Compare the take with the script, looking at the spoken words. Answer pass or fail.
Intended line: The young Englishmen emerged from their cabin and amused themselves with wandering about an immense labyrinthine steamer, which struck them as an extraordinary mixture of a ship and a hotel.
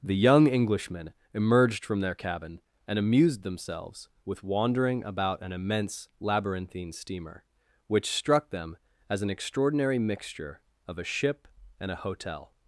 pass